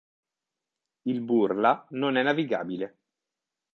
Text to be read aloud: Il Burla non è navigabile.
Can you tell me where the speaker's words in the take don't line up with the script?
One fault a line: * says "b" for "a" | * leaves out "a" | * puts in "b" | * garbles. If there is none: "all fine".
all fine